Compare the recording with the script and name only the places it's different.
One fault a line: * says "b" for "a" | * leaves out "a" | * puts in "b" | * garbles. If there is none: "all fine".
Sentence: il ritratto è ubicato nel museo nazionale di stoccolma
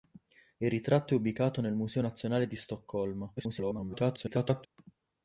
* garbles